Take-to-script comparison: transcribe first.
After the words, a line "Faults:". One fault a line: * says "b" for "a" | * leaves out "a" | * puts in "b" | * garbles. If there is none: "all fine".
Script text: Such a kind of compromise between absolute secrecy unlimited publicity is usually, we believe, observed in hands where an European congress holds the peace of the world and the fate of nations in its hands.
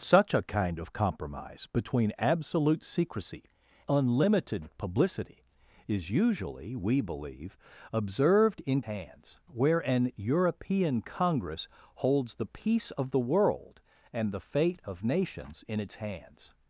Such a kind of compromise between absolute secrecy unlimited publicity is usually, we believe, observed in hands where an European congress holds the peace of the world and the fate of nations in its hands.
Faults:
all fine